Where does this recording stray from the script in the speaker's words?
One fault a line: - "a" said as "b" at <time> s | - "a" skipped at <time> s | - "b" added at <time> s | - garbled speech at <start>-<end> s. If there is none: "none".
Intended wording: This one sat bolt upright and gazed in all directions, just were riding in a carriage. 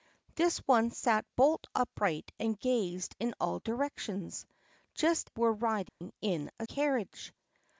none